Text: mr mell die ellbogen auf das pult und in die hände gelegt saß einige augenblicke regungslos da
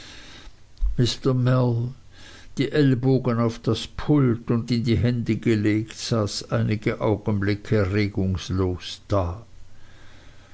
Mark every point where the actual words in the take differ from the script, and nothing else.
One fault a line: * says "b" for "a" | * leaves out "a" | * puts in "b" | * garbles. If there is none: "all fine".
all fine